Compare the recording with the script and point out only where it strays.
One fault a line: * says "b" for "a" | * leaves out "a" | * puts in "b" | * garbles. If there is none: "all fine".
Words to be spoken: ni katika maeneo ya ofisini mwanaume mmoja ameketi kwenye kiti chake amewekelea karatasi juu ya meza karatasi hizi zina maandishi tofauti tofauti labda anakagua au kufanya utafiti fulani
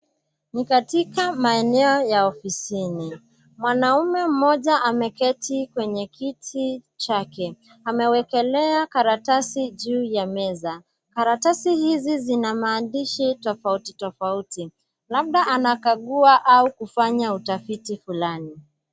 all fine